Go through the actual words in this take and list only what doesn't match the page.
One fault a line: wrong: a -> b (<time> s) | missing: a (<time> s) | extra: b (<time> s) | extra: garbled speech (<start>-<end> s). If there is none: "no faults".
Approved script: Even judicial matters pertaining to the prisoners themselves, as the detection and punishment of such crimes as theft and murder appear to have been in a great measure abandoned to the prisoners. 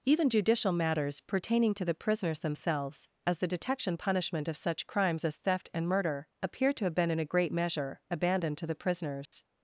missing: and (4.0 s)